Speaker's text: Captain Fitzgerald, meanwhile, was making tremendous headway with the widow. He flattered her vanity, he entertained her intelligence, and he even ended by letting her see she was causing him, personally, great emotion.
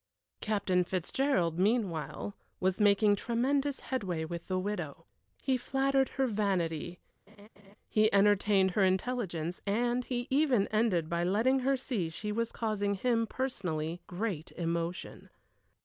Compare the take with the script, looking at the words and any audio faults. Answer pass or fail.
fail